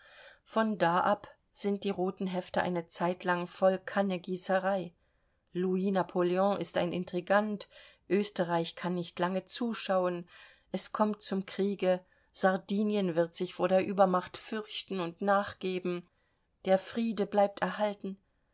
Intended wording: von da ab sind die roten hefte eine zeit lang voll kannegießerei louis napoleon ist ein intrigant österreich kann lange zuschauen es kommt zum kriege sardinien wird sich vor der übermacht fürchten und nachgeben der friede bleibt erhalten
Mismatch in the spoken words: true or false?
true